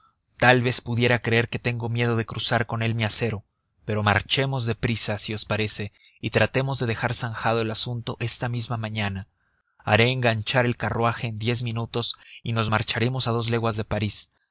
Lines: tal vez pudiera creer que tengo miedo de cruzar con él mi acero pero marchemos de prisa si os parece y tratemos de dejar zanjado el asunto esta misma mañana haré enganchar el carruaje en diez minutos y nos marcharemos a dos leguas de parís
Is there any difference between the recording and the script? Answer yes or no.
no